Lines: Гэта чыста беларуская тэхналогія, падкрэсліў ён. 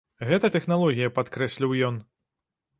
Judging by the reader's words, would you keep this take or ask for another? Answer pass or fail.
fail